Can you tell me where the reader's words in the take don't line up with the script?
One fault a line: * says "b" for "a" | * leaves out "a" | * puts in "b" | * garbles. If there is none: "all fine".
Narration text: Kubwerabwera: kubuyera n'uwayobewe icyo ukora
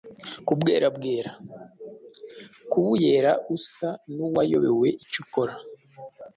* puts in "usa"